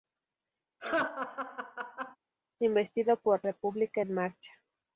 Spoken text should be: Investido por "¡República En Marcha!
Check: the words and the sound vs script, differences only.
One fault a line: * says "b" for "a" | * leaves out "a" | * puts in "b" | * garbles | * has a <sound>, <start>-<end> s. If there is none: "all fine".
* has a laugh, 0.8-2.2 s